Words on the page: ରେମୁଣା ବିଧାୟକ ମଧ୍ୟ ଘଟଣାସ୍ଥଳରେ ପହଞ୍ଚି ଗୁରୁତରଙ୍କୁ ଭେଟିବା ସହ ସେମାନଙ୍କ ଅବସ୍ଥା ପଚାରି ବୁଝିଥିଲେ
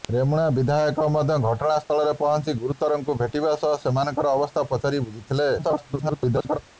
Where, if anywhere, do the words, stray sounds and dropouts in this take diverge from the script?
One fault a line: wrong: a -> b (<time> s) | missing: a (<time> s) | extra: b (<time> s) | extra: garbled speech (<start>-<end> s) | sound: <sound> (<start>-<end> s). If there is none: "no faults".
sound: dropout (1.8-1.9 s)
extra: garbled speech (5.6-6.6 s)